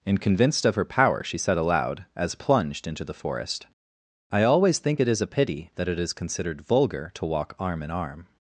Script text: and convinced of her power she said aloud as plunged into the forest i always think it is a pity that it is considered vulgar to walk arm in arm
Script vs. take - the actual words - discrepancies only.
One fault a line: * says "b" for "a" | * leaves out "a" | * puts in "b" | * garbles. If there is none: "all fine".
all fine